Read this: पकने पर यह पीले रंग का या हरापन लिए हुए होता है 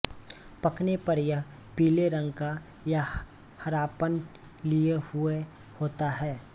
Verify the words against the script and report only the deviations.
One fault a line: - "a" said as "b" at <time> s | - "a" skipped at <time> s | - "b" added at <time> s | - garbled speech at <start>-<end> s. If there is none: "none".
none